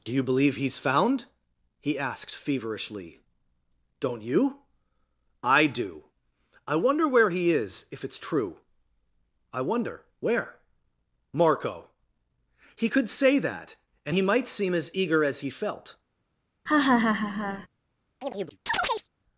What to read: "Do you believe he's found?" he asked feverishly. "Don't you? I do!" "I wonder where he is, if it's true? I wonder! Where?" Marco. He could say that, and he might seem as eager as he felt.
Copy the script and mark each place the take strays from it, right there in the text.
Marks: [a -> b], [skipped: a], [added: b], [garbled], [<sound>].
"Do you believe he's found?" he asked feverishly. "Don't you? I do!" "I wonder where he is, if it's true? I wonder! Where?" Marco. He could say that, and he might seem as eager as he felt. [laugh] [chirp]